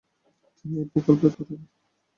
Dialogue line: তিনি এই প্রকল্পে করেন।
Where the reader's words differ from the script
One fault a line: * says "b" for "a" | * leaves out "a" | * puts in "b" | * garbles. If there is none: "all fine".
all fine